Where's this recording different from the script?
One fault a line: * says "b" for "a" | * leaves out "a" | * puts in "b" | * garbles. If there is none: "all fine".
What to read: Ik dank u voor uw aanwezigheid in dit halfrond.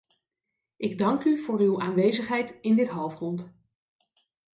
all fine